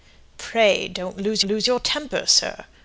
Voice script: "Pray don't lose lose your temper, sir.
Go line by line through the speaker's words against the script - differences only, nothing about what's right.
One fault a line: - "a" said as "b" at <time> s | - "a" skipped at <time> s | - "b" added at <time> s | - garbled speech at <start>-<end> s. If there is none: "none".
none